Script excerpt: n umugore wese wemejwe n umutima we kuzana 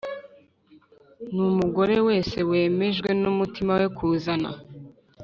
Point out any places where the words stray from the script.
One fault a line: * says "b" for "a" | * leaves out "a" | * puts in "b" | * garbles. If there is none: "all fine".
all fine